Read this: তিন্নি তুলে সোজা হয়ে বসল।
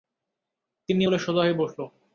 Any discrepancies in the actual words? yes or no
no